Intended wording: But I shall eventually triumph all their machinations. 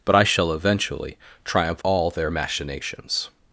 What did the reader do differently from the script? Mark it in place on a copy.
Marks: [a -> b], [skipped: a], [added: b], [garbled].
But I shall eventually triumph all their machinations.